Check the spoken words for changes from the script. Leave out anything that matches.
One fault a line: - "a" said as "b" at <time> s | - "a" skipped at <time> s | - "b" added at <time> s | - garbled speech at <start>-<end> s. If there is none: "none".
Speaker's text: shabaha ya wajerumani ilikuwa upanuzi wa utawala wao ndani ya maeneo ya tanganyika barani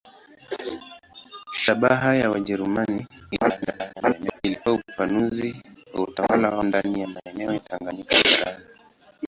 - garbled speech at 3.4-4.4 s